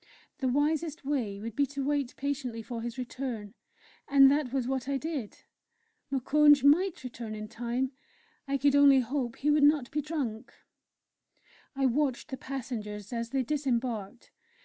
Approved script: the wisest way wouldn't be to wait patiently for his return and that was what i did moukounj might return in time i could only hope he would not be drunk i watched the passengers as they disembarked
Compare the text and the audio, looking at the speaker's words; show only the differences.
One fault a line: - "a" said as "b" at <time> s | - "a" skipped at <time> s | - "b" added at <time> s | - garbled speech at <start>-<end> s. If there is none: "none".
- "wouldn't" said as "would" at 1.4 s